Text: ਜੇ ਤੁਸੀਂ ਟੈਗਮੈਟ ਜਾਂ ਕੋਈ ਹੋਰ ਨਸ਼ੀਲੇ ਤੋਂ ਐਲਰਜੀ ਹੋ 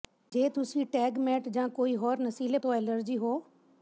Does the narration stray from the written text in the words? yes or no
no